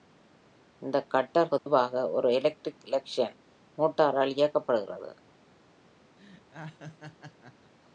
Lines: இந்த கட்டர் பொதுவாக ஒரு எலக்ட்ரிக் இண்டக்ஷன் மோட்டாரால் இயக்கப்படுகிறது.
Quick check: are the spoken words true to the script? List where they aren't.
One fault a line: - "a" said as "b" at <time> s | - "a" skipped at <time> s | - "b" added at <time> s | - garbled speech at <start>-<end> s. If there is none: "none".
none